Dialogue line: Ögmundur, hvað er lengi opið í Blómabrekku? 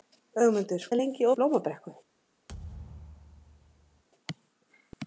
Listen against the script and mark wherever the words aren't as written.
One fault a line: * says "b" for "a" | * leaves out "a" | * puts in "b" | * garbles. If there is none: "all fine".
* leaves out "hvað"
* leaves out "opið"